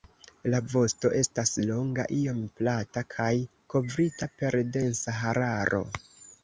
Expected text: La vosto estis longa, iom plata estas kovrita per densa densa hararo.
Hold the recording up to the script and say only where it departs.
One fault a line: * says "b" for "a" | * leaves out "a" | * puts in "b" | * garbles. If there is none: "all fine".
* says "estas" for "estis"
* says "kaj" for "estas"
* leaves out "densa"